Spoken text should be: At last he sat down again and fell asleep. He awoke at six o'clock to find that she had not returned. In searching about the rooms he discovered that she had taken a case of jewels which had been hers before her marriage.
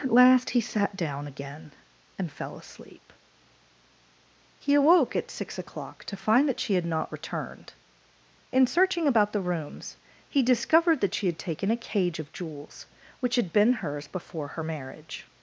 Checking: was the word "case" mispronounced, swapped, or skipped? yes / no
yes